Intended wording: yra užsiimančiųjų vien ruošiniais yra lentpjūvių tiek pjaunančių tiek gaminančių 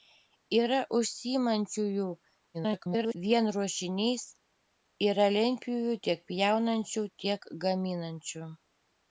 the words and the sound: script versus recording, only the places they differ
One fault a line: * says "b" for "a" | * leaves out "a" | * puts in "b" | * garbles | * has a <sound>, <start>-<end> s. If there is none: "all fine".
* garbles